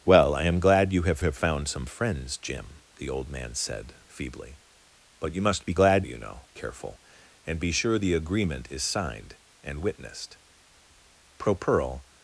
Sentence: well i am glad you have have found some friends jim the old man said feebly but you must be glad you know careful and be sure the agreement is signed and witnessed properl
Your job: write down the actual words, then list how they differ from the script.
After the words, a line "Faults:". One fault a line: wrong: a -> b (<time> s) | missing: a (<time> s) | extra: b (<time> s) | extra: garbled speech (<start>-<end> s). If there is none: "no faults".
well i am glad you have have found some friends jim the old man said feebly but you must be glad you know careful and be sure the agreement is signed and witnessed properl
Faults:
no faults